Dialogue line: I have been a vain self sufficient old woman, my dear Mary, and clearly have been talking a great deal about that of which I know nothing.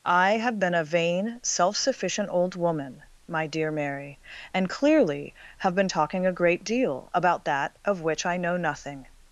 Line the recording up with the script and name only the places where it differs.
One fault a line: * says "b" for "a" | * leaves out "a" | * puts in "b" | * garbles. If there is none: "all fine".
all fine